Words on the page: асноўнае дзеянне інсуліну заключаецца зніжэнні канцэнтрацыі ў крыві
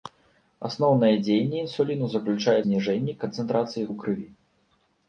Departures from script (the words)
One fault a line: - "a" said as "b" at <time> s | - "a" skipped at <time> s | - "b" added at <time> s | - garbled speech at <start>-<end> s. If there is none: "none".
none